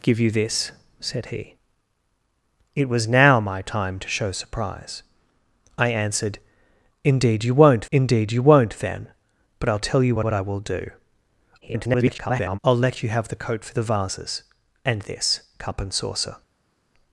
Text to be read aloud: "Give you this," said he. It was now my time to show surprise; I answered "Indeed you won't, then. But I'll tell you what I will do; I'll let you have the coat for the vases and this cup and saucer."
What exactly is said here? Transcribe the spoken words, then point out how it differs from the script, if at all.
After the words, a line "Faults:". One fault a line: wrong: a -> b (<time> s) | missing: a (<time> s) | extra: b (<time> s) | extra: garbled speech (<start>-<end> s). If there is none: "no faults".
"Give you this," said he. It was now my time to show surprise; I answered "Indeed you won't indeed you won't, then. But I'll tell you what what I will do; [garbled] I'll let you have the coat for the vases and this cup and saucer."
Faults:
extra: indeed you won't (7.9 s)
extra: what (10.2 s)
extra: garbled speech (11.6-12.6 s)